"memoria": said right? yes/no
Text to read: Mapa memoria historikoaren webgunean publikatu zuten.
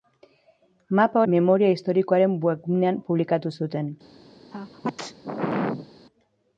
yes